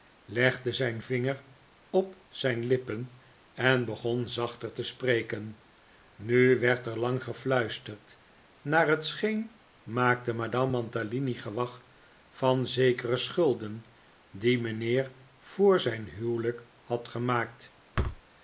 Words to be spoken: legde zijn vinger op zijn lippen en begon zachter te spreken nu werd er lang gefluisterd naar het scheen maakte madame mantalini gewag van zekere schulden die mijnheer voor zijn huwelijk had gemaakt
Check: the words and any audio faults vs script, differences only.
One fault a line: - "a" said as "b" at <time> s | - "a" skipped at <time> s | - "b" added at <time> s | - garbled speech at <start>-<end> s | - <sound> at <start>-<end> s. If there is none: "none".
- thud at 17.9-18.2 s